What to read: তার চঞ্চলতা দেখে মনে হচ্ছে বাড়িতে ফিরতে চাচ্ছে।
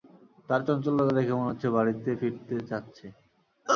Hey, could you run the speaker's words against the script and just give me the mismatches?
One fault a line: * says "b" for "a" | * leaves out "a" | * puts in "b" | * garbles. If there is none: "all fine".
all fine